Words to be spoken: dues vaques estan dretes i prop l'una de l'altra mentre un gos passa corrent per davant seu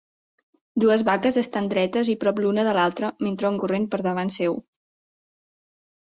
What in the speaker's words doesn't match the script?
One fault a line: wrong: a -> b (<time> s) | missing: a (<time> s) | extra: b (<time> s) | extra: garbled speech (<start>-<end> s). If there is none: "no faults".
missing: gos passa (3.6 s)